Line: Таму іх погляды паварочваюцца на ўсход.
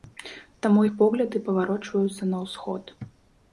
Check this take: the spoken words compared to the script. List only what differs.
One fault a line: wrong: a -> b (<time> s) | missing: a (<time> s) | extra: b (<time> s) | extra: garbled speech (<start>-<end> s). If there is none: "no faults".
no faults